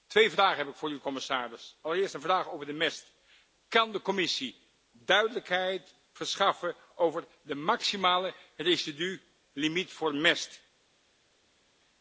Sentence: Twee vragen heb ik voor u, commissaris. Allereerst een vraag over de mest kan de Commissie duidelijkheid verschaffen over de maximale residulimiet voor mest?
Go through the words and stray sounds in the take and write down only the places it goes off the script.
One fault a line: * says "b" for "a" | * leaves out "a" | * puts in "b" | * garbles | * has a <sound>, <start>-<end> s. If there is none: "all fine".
all fine